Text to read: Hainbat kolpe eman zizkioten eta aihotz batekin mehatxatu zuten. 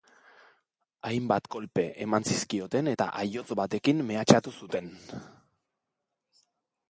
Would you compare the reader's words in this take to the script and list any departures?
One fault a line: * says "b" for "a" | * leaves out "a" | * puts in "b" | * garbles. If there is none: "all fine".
all fine